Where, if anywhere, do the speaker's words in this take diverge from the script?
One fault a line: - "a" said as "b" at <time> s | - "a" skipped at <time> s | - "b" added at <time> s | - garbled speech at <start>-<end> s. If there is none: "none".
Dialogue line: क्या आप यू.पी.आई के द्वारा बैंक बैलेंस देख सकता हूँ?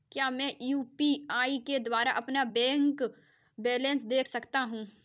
- "आप" said as "मैं" at 0.3 s
- "अपना" added at 2.1 s